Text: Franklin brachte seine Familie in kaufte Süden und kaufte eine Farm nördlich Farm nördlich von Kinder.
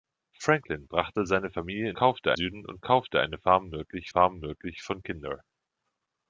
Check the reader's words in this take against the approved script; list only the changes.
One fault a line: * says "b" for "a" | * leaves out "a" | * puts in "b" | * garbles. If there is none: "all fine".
all fine